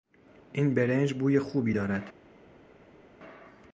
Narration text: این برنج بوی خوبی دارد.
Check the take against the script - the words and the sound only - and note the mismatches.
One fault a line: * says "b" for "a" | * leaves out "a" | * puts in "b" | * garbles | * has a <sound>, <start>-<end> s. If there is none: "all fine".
all fine